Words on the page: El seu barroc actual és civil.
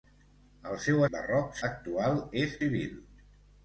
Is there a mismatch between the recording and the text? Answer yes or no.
no